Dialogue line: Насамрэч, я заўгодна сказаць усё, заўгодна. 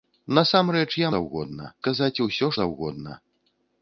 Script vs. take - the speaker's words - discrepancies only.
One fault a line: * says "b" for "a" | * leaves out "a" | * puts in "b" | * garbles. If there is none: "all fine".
all fine